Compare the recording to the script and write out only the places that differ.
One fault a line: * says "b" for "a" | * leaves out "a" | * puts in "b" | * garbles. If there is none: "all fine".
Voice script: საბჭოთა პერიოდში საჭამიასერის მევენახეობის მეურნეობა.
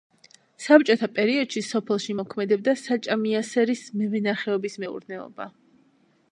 * puts in "სოფელში მოქმედებდა"